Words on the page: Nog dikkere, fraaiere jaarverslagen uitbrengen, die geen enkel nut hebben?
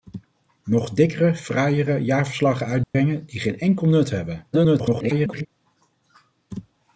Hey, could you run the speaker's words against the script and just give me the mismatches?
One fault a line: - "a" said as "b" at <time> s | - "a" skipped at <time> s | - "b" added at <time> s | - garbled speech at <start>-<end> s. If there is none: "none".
- garbled speech at 4.5-5.5 s